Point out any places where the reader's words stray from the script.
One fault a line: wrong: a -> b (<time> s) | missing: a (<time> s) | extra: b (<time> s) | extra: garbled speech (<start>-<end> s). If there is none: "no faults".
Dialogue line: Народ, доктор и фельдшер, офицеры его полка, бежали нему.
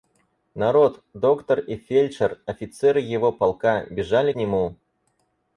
no faults